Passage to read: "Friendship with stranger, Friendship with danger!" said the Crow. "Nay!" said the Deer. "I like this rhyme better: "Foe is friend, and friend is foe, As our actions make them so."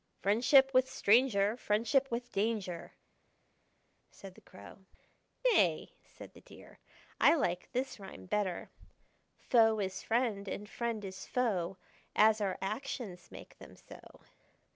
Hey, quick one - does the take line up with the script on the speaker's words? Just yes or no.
yes